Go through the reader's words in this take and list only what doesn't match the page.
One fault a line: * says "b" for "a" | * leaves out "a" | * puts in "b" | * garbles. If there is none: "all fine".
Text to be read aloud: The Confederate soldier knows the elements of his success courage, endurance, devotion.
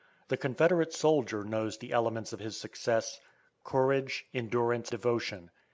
all fine